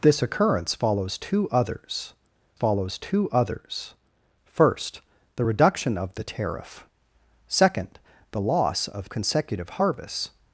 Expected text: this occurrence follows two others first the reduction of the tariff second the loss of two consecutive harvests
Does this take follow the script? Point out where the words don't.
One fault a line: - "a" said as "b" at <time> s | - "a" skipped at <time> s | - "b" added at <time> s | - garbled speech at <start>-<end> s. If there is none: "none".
- "follows two others" added at 2.5 s
- "two" skipped at 9.1 s